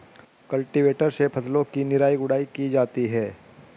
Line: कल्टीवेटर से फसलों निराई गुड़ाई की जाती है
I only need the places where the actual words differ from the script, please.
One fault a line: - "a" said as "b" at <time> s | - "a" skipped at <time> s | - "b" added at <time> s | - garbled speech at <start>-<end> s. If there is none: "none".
- "की" added at 1.7 s